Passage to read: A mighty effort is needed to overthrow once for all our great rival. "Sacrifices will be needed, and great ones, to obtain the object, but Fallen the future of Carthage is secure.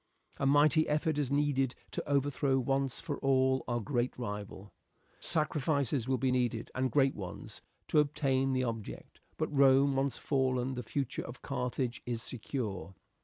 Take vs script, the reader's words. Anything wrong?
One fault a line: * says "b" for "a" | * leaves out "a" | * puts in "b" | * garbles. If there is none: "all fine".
* puts in "Rome once"